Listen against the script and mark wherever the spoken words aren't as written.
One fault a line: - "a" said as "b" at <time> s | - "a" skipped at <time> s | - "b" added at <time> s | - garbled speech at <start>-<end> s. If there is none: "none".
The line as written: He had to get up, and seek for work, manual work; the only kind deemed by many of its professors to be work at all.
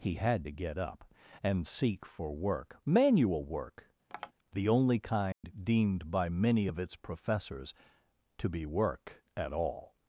none